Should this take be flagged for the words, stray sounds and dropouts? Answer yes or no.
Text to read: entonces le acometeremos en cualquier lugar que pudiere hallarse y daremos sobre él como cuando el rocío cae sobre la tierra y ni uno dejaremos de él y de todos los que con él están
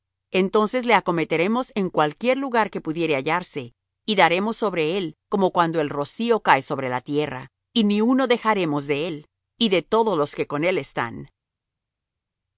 no